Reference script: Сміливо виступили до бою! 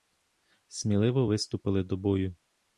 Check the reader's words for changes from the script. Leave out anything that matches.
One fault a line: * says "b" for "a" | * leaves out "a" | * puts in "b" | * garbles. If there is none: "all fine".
all fine